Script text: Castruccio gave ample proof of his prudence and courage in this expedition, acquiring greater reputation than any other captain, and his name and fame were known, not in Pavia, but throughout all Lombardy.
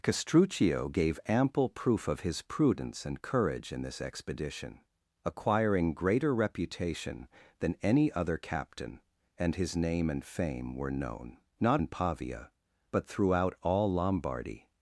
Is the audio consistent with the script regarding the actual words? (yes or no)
yes